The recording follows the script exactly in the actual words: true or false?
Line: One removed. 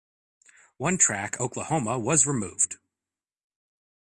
false